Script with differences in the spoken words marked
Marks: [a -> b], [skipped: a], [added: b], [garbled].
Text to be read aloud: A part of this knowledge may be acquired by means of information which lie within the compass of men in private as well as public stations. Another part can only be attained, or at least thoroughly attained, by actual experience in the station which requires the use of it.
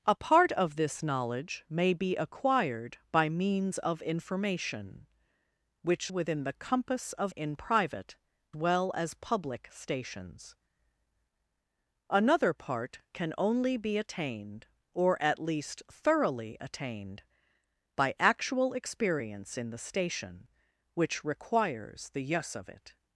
A part of this knowledge may be acquired by means of information which [skipped: lie] within the compass of [skipped: men] in private [skipped: as] well as public stations. Another part can only be attained, or at least thoroughly attained, by actual experience in the station which requires the use of it.